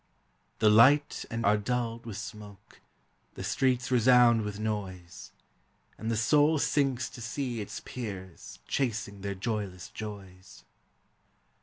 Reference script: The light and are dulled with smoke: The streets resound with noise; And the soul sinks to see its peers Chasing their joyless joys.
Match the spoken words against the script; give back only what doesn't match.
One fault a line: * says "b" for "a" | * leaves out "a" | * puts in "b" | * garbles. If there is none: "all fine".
all fine